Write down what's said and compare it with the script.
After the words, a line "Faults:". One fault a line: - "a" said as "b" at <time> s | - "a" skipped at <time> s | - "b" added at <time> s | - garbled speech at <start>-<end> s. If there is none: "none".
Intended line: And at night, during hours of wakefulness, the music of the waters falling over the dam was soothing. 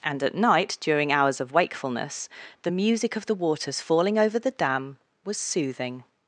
And at night, during hours of wakefulness, the music of the waters falling over the dam was soothing.
Faults:
none